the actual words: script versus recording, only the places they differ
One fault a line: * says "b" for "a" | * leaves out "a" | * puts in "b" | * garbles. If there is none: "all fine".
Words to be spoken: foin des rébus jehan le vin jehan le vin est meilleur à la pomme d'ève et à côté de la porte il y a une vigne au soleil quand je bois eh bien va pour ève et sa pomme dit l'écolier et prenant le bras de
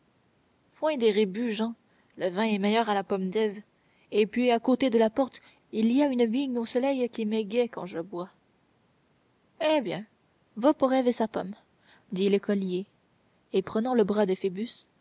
* leaves out "jehan le vin"
* puts in "puis"
* puts in "qui m'égaie"